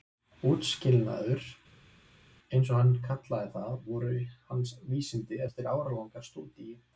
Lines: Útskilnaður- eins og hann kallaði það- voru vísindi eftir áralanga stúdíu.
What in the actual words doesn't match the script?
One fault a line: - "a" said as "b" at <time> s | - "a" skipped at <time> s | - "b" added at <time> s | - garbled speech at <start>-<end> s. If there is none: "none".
- "hans" added at 4.5 s